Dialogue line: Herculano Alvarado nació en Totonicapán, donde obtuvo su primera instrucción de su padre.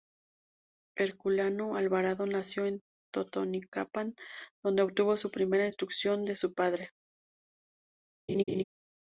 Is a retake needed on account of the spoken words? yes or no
no